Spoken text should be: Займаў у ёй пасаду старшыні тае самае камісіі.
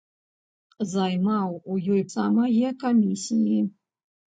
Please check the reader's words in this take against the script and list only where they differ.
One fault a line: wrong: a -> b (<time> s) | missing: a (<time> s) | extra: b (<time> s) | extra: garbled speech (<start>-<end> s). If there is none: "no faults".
missing: пасаду старшыні тае (2.0 s)